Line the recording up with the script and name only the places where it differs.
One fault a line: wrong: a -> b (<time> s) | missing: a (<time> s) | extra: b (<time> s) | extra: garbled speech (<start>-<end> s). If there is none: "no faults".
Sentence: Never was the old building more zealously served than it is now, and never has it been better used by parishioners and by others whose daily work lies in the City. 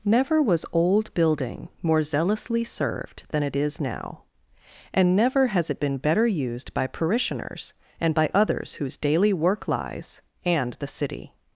missing: the (0.7 s)
wrong: in -> and (10.4 s)